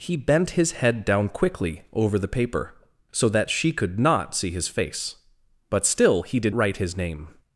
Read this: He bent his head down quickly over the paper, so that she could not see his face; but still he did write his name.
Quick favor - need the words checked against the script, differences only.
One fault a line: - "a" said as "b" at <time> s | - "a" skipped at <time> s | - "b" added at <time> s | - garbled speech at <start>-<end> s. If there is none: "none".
none